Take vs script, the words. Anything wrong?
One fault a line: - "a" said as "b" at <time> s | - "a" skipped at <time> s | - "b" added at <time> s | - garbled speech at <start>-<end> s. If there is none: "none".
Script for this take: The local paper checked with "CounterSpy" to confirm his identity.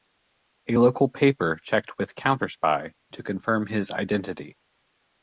- "The" said as "A" at 0.7 s